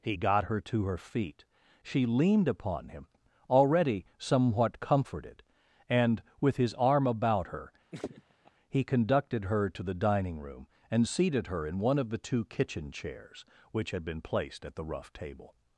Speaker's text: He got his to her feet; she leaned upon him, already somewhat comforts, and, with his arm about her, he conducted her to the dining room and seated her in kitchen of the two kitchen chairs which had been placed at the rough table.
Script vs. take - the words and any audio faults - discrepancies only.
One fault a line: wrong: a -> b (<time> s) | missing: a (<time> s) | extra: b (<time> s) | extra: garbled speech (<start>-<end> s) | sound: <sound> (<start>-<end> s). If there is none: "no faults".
wrong: his -> her (0.4 s)
wrong: comforts -> comforted (4.8 s)
sound: laugh (7.9-8.5 s)
wrong: kitchen -> one (11.8 s)